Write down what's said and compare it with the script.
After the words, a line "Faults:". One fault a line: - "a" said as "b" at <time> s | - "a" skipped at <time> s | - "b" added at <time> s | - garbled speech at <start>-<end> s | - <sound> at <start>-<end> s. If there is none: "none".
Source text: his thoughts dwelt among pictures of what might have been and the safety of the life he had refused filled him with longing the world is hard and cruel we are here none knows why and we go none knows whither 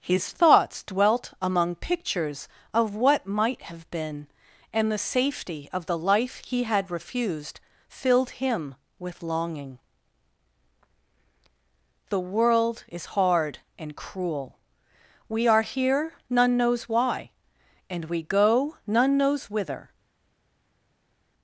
his thoughts dwelt among pictures of what might have been and the safety of the life he had refused filled him with longing the world is hard and cruel we are here none knows why and we go none knows whither
Faults:
none